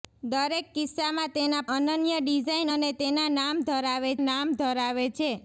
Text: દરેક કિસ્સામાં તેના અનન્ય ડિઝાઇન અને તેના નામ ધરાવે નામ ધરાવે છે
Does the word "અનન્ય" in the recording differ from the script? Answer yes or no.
no